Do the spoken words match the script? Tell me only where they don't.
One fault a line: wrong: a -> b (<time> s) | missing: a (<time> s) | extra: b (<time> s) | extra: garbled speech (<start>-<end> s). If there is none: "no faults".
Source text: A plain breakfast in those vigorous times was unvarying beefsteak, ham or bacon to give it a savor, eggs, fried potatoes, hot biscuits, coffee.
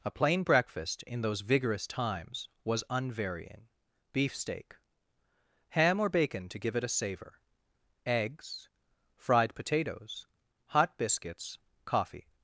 no faults